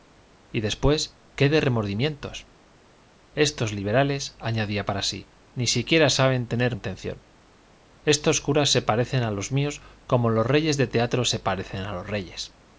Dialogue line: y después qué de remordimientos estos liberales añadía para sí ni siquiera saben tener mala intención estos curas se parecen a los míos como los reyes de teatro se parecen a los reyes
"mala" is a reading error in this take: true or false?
true